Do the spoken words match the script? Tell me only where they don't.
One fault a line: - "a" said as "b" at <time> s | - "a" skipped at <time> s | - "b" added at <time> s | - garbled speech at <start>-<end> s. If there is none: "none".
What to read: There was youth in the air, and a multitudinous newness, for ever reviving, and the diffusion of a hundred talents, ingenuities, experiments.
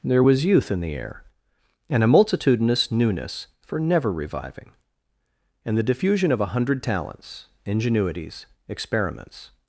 - "ever" said as "never" at 3.8 s